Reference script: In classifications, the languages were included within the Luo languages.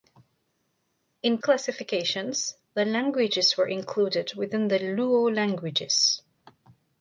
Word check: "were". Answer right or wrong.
right